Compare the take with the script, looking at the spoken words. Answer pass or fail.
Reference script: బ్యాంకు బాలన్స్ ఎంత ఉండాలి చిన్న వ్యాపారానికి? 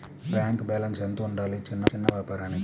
fail